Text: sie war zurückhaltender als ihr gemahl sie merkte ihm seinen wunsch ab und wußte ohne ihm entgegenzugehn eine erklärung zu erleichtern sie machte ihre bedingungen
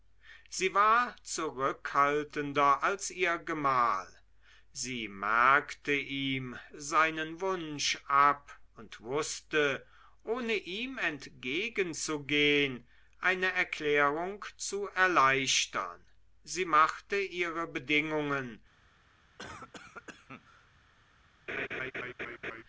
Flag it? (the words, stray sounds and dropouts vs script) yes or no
yes